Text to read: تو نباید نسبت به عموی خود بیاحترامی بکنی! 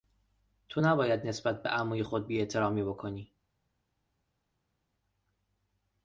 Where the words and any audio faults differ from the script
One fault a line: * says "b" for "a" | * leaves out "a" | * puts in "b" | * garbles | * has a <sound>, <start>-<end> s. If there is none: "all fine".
all fine